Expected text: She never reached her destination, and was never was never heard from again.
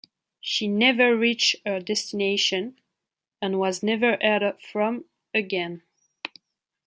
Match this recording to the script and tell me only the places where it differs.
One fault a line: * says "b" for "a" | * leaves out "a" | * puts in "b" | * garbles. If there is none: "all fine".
* leaves out "was never"